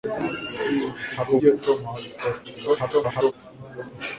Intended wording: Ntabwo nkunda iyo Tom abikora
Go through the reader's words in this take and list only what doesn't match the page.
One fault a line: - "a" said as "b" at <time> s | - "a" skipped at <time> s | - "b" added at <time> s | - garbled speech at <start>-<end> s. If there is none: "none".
- "nkunda" skipped at 1.3 s
- garbled speech at 2.4-3.3 s